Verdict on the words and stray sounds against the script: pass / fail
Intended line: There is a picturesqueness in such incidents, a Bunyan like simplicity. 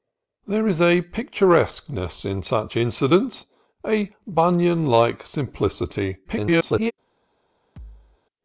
fail